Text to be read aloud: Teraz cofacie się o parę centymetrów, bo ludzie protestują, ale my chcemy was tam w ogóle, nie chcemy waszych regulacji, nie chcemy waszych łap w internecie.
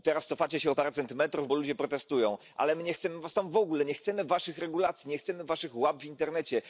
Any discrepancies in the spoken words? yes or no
yes